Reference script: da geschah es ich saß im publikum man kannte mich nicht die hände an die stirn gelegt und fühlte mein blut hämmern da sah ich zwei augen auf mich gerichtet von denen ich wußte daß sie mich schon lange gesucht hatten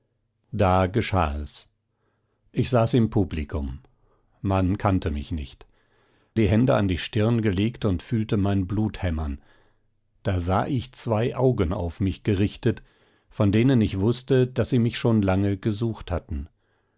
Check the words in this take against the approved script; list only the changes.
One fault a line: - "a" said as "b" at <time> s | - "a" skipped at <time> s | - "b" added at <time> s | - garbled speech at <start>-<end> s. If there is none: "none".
none